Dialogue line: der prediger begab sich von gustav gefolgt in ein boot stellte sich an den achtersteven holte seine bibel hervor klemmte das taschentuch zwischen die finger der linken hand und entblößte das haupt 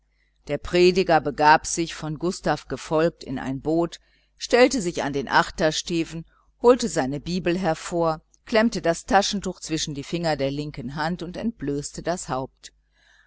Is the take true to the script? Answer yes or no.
yes